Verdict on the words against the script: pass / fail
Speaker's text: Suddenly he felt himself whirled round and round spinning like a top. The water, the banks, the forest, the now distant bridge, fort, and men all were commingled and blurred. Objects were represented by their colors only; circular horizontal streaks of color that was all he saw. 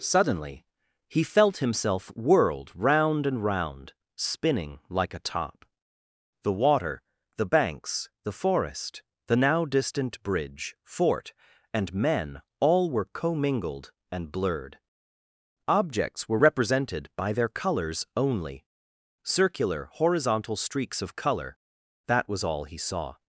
pass